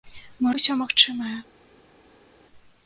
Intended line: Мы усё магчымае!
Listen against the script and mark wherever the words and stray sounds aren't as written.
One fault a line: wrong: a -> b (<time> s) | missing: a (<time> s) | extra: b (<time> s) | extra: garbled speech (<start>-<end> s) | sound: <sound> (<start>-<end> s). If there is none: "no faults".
no faults